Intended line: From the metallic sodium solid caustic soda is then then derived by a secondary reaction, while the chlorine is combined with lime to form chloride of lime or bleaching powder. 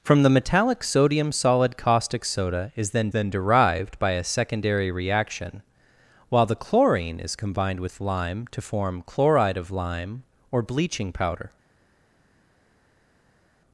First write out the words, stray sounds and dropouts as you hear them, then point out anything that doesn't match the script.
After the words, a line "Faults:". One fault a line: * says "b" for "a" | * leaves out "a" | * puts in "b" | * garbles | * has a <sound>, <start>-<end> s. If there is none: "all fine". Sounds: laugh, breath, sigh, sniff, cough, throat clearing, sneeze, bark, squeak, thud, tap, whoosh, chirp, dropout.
From the metallic sodium solid caustic soda is then then derived by a secondary reaction, while the chlorine is combined with lime to form chloride of lime or bleaching powder.
Faults:
all fine